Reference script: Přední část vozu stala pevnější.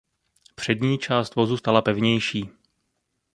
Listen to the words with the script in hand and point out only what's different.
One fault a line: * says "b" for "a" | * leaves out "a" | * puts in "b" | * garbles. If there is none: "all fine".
all fine